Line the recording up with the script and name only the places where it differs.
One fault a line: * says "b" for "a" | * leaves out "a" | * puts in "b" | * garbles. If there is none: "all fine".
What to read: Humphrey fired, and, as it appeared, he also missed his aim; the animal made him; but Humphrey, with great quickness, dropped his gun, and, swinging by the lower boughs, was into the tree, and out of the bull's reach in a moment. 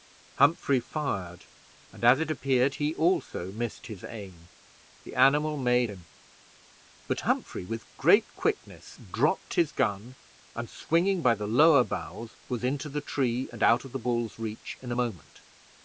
all fine